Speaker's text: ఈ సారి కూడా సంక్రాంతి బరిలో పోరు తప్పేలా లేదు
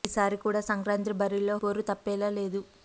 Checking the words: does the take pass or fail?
pass